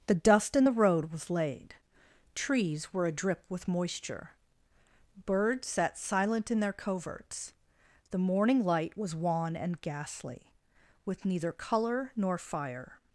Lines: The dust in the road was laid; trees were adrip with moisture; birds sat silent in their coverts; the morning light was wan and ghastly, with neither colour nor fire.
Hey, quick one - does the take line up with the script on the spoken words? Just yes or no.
yes